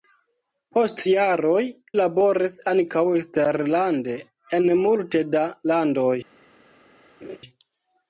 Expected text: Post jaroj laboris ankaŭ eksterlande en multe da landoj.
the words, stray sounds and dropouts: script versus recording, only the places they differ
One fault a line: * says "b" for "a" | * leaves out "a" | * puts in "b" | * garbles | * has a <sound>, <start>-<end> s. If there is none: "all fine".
* has a laugh, 7.2-7.4 s